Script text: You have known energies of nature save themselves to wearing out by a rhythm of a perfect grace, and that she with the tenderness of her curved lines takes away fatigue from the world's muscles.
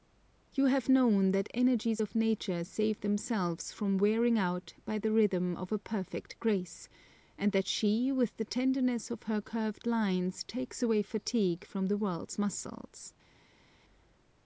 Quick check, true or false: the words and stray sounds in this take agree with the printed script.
false